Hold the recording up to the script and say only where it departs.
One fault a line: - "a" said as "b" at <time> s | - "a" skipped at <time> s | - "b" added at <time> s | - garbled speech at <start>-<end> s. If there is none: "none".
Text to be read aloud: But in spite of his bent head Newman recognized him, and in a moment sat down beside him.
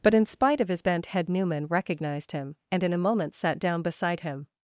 none